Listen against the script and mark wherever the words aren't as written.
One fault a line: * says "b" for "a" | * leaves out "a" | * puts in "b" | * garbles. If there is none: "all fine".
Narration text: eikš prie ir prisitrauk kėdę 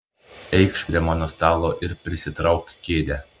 * puts in "mano stalo"